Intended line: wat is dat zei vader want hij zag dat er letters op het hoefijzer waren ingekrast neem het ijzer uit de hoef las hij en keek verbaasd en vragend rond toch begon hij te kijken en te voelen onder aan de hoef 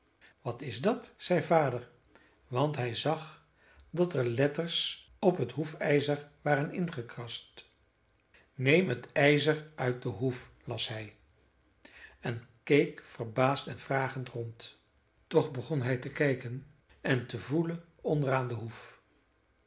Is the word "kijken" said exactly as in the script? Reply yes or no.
yes